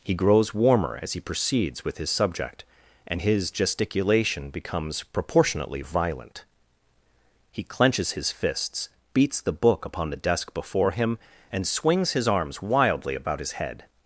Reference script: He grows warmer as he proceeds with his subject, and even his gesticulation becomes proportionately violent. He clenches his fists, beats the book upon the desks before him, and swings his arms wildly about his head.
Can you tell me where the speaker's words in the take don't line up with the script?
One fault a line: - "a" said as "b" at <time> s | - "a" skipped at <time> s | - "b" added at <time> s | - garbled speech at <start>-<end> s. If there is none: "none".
- "even" skipped at 3.2 s
- "desks" said as "desk" at 10.2 s